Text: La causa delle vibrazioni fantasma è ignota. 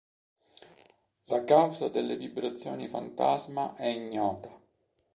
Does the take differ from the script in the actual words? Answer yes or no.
no